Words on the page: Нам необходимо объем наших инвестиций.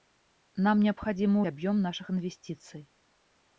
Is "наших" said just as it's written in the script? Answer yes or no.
yes